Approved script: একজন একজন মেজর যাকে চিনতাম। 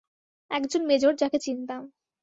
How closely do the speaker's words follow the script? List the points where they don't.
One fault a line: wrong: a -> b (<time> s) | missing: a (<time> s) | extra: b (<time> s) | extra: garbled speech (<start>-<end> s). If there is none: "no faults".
missing: একজন (0.8 s)